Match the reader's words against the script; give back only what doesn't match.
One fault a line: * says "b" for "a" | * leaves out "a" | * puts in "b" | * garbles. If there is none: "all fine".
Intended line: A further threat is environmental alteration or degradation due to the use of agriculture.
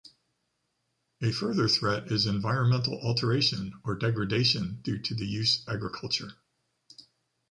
* leaves out "of"